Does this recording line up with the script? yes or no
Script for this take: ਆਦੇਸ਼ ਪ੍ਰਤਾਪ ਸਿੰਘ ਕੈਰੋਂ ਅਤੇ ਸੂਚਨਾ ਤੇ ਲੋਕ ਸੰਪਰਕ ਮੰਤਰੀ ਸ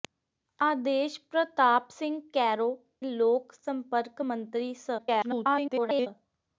no